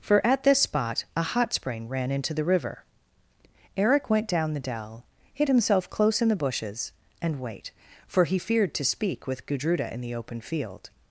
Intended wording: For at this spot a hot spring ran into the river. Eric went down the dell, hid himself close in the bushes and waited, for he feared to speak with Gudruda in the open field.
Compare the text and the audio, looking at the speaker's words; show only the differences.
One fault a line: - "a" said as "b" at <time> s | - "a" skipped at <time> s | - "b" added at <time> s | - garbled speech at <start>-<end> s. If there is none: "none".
- "waited" said as "wait" at 7.4 s